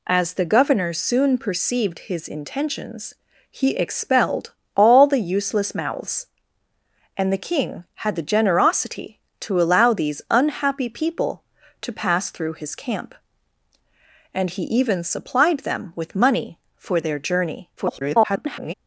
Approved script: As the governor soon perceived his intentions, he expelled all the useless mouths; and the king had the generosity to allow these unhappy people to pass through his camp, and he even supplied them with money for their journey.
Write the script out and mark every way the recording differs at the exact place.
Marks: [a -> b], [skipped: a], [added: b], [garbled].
As the governor soon perceived his intentions, he expelled all the useless mouths; and the king had the generosity to allow these unhappy people to pass through his camp, and he even supplied them with money for their journey. [garbled]